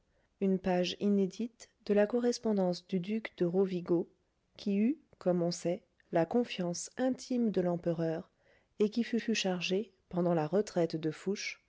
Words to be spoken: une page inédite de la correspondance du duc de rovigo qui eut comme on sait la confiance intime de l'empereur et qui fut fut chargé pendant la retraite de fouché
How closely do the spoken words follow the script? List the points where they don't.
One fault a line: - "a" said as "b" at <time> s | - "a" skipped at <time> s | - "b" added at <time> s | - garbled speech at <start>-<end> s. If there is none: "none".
none